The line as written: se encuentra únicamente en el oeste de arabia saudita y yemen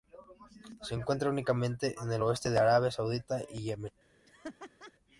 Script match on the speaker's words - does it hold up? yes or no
yes